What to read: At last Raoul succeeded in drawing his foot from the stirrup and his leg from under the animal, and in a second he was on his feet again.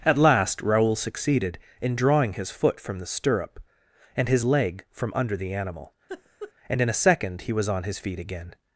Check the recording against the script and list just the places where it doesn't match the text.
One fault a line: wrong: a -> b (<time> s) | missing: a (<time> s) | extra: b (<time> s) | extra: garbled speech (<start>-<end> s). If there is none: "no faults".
no faults